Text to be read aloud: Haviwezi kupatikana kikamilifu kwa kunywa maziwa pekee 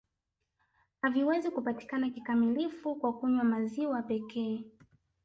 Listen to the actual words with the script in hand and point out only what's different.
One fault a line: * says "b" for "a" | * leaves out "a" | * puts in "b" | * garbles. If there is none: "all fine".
all fine